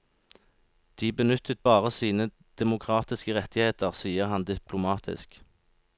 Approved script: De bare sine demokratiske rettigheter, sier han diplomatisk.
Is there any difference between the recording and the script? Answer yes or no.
yes